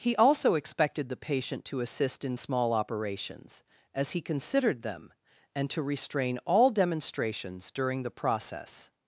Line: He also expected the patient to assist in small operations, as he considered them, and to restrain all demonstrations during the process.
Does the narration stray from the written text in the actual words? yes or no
no